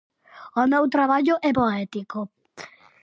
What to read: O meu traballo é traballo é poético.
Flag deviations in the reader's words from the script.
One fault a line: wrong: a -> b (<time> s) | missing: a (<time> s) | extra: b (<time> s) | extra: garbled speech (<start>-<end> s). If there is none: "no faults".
missing: traballo é (1.5 s)